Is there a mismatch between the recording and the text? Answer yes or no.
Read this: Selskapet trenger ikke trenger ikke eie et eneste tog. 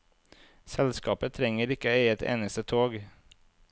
yes